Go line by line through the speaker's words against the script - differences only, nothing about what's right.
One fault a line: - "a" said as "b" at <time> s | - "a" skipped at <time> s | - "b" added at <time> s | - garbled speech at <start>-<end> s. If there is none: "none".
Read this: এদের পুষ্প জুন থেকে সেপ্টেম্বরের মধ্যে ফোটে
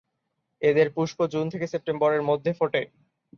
none